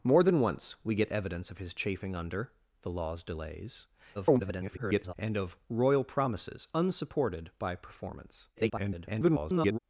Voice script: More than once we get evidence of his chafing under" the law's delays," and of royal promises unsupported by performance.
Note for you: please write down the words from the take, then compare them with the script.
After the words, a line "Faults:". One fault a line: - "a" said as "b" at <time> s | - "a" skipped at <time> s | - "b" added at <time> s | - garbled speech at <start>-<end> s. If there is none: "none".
More than once we get evidence of his chafing under" the law's delays," [garbled] and of royal promises unsupported by performance. [garbled]
Faults:
- garbled speech at 4.1-5.1 s
- garbled speech at 8.6-9.8 s